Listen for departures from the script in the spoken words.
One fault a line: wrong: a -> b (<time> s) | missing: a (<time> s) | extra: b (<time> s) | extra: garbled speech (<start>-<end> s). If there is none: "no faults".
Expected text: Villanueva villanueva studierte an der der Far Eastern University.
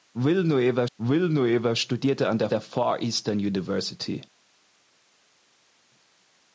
no faults